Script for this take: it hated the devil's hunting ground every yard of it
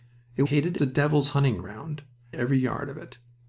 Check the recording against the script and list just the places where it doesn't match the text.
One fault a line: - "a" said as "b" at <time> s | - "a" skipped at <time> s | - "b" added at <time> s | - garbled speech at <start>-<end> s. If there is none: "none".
none